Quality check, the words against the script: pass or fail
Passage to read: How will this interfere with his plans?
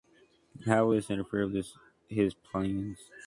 pass